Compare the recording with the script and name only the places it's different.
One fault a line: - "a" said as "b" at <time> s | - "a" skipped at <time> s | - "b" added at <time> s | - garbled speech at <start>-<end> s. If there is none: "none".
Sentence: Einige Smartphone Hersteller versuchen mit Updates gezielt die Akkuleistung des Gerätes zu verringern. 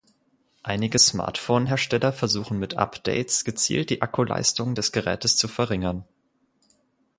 none